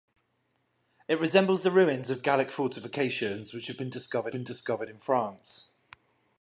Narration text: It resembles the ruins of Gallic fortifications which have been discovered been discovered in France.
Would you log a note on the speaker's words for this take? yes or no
no